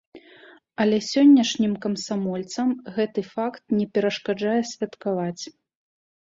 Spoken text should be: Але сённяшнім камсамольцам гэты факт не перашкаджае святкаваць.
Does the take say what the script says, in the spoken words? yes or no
yes